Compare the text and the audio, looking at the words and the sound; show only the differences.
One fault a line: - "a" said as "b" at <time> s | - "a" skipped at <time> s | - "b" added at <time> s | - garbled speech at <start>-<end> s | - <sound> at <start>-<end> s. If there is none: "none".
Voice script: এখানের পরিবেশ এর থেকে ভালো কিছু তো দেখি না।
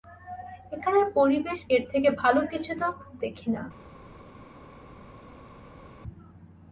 none